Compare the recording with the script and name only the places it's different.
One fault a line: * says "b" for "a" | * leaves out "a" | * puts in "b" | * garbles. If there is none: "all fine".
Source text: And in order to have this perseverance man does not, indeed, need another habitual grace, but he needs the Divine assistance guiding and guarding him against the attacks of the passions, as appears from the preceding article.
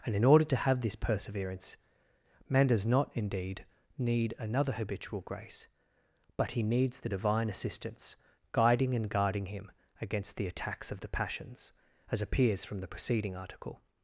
all fine